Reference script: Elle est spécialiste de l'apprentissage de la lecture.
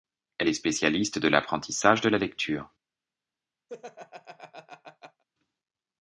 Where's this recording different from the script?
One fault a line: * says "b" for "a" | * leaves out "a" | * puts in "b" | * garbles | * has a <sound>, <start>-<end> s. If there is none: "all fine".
* has a laugh, 3.7-5.2 s